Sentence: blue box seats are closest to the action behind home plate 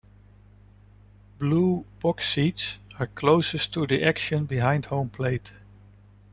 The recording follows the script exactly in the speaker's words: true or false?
true